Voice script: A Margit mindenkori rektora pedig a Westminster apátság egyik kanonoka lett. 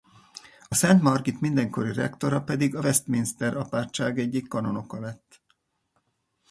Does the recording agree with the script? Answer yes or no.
no